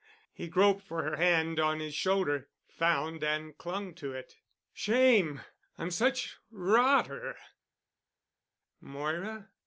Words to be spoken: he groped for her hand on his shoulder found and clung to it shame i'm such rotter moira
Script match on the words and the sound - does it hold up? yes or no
yes